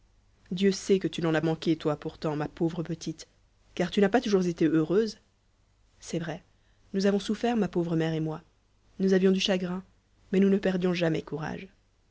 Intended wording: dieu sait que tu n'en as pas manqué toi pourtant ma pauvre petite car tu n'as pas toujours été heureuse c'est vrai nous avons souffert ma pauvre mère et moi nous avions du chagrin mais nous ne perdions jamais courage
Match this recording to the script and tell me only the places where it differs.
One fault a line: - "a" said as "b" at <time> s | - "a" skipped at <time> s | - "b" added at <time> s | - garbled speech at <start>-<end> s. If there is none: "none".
- "pas" skipped at 1.4 s